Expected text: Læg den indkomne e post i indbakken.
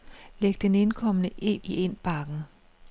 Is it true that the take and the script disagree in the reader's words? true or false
true